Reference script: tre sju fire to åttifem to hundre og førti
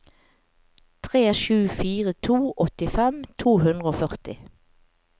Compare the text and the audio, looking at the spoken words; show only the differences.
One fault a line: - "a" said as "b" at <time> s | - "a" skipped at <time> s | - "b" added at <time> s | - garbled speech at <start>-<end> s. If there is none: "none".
none